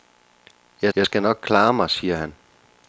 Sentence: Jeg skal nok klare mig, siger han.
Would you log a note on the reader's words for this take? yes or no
yes